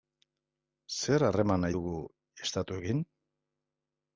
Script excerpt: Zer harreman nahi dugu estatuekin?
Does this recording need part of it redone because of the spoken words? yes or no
no